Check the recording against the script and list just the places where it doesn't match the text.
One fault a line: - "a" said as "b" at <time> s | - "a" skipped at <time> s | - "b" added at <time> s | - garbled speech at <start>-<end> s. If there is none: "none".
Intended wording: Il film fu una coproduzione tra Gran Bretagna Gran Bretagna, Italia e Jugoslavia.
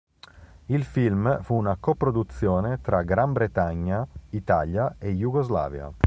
- "Gran Bretagna" skipped at 4.1 s